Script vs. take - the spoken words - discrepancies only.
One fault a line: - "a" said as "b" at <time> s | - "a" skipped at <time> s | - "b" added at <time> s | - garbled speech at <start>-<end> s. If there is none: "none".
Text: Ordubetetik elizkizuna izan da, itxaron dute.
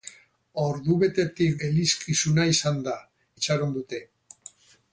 none